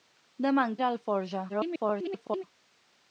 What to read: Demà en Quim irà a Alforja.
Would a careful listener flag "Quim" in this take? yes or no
yes